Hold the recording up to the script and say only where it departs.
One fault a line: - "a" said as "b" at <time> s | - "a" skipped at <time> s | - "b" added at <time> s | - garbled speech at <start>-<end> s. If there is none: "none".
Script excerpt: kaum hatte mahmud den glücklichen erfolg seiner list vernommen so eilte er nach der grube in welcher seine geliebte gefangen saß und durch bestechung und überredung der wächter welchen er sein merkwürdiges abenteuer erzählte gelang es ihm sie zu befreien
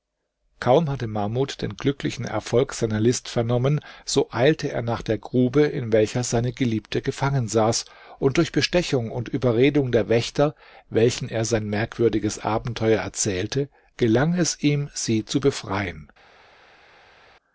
none